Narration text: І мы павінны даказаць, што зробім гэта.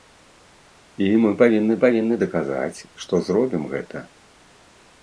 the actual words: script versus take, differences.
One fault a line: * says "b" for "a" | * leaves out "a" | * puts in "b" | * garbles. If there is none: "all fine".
* puts in "павінны"